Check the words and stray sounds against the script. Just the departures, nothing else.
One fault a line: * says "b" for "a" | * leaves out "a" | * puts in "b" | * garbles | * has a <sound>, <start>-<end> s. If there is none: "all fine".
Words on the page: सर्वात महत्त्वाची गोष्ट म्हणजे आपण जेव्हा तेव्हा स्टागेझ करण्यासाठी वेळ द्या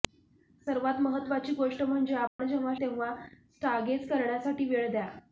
* has a dropout, 2.3-2.4 s